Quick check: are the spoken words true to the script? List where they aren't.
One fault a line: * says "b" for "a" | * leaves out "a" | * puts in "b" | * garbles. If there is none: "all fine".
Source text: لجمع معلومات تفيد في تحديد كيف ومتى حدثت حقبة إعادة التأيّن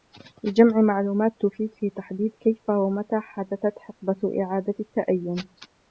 all fine